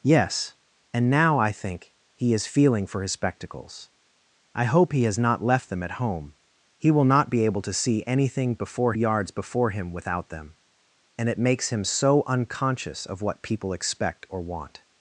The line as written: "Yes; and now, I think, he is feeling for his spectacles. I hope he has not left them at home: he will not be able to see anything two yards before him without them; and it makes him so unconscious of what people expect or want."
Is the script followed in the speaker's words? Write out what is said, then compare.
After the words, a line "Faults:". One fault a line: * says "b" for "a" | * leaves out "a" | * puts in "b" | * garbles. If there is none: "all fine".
"Yes; and now, I think, he is feeling for his spectacles. I hope he has not left them at home: he will not be able to see anything before yards before him without them; and it makes him so unconscious of what people expect or want."
Faults:
* says "before" for "two"